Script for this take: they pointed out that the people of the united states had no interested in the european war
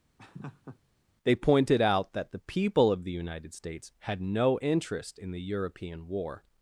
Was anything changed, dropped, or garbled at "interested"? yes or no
yes